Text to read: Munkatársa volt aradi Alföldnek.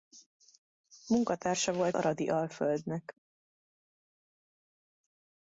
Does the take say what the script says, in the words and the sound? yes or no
yes